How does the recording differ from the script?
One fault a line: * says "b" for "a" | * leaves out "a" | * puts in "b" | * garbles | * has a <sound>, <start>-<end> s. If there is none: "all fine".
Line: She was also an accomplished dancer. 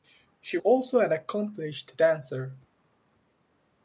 * leaves out "was"